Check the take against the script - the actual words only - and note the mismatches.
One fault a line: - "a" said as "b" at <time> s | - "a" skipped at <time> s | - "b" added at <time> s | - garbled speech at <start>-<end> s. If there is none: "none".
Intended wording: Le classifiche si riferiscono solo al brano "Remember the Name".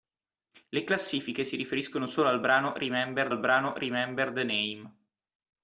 - "al brano Remember" added at 3.3 s